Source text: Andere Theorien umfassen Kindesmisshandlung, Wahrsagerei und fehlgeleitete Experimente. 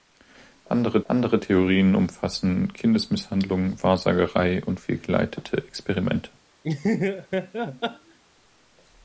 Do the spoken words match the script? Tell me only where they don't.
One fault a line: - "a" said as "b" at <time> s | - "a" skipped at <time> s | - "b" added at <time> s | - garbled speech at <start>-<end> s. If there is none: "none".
- "andere" added at 1.1 s